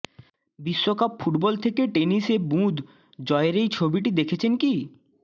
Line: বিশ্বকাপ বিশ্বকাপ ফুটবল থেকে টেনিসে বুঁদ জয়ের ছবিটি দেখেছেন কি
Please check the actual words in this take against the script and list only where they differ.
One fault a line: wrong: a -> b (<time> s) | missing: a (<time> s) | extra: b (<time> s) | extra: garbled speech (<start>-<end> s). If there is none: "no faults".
missing: বিশ্বকাপ (1.1 s)
extra: এই (3.6 s)